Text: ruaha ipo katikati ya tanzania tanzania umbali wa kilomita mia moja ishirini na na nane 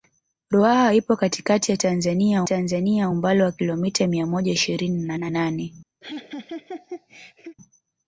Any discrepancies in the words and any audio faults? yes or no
yes